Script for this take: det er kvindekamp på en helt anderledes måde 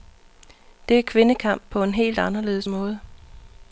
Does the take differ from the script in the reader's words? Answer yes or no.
no